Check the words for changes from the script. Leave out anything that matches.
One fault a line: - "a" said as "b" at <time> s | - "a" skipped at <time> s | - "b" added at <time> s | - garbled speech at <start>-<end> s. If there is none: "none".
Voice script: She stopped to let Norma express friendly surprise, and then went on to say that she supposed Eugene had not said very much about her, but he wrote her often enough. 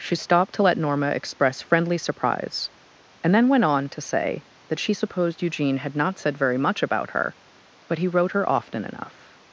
none